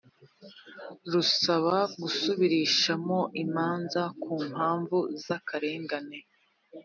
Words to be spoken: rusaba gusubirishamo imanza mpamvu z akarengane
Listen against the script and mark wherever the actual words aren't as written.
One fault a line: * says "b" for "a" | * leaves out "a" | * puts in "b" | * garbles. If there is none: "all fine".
* puts in "ku"